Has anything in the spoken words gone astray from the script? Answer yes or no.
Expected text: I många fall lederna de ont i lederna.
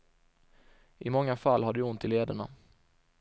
yes